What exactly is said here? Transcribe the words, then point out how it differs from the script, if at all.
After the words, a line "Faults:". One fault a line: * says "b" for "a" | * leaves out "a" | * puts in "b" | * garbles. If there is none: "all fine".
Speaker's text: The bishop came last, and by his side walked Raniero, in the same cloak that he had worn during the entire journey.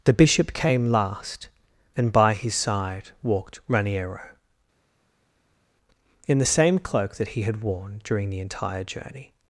The bishop came last, and by his side walked Raniero, in the same cloak that he had worn during the entire journey.
Faults:
all fine